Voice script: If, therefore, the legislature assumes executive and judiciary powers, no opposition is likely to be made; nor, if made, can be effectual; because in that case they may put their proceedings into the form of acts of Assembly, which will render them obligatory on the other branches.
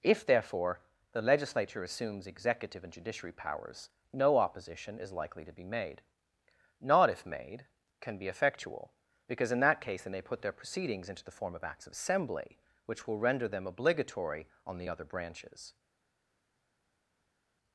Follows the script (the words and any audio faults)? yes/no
no